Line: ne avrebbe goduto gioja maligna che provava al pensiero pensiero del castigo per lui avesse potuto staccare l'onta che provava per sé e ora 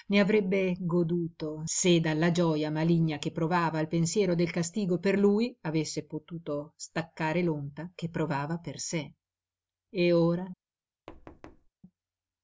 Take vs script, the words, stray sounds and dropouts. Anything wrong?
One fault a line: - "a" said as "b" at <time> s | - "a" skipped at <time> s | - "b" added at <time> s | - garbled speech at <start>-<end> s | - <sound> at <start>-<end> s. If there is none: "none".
- "se dalla" added at 1.6 s
- "pensiero" skipped at 4.3 s
- thud at 11.1-11.7 s